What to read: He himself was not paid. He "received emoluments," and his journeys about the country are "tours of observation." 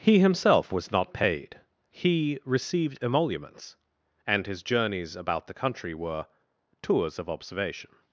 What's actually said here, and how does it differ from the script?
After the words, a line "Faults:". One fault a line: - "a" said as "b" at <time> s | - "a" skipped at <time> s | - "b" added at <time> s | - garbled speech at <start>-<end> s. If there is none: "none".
He himself was not paid. He "received emoluments," and his journeys about the country were "tours of observation."
Faults:
- "are" said as "were" at 5.9 s